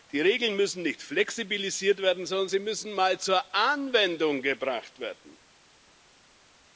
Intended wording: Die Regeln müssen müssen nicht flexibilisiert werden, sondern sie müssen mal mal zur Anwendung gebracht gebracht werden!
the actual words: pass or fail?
fail